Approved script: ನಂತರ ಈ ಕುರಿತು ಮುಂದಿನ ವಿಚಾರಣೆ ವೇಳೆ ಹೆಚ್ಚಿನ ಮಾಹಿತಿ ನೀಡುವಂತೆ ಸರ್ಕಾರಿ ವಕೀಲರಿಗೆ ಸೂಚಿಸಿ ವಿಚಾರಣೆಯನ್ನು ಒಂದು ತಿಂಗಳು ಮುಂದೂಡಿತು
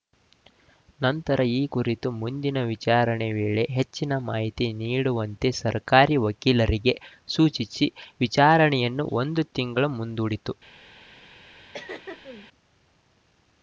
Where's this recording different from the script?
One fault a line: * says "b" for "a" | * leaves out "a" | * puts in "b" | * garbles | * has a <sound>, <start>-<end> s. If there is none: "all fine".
* has a throat clearing, 11.7-12.5 s